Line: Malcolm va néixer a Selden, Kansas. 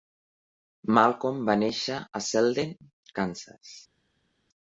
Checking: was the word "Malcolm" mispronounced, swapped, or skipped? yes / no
no